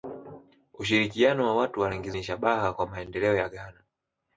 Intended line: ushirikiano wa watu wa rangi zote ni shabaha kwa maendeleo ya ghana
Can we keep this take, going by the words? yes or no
no